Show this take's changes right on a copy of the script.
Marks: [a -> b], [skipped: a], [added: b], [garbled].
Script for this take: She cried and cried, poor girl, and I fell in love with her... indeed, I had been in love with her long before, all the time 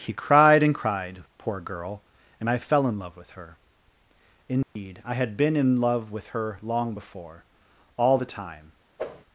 [She -> He] cried and cried, poor girl, and I fell in love with her... indeed, I had been in love with her long before, all the time